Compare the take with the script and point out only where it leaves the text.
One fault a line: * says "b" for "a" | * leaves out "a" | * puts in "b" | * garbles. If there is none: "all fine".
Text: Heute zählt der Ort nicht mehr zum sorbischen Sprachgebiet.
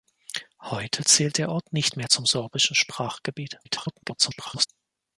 * garbles